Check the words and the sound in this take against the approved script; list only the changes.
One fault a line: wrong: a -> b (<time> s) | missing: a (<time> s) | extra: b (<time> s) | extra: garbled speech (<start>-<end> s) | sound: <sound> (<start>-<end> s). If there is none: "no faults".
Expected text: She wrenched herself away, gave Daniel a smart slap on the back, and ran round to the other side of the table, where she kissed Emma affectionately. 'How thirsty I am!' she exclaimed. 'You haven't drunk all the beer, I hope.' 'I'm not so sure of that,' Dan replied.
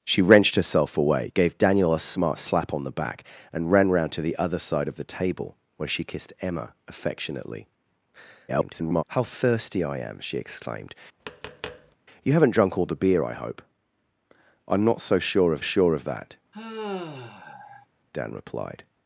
extra: garbled speech (8.5-9.0 s)
sound: tap (11.2-12.0 s)
extra: sure of (15.6 s)
sound: sigh (16.5-17.9 s)